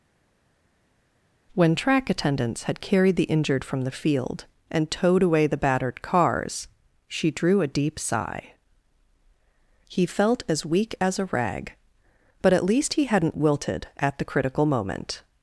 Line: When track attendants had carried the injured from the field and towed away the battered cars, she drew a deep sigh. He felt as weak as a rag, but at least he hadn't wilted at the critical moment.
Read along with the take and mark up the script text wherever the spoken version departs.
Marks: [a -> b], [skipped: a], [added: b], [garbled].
When track attendants had carried the injured from the field and towed away the battered cars, she drew a deep sigh. He felt as weak as a rag, but at least he hadn't wilted at the critical moment.